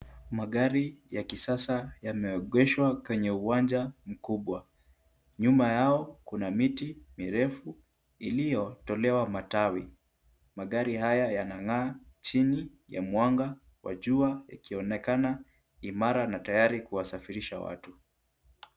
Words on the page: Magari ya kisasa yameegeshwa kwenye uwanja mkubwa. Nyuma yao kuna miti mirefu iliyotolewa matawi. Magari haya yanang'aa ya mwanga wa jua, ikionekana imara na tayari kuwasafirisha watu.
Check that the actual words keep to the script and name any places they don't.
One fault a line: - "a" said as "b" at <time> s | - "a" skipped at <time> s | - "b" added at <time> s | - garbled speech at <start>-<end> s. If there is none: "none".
- "chini" added at 12.2 s